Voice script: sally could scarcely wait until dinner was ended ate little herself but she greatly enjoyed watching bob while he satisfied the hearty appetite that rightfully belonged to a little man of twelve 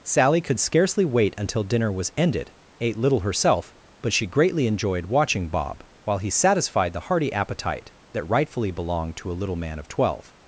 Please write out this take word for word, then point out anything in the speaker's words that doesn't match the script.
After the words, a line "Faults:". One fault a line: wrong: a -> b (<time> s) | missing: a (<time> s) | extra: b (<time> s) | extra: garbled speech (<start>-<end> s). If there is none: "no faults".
sally could scarcely wait until dinner was ended ate little herself but she greatly enjoyed watching bob while he satisfied the hearty appetite that rightfully belonged to a little man of twelve
Faults:
no faults